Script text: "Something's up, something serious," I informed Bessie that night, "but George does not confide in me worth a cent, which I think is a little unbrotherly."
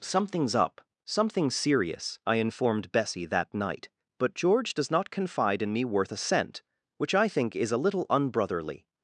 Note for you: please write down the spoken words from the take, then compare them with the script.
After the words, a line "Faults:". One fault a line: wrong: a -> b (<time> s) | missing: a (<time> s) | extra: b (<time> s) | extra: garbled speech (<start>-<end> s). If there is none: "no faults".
"Something's up, something serious," I informed Bessie that night, "but George does not confide in me worth a cent, which I think is a little unbrotherly."
Faults:
no faults